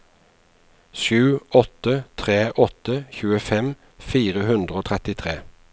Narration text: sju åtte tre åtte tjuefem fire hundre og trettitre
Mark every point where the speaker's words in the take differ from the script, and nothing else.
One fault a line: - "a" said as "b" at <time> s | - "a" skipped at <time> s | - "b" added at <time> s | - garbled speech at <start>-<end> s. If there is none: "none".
none